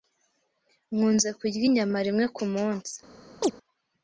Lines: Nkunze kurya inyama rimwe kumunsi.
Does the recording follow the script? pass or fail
pass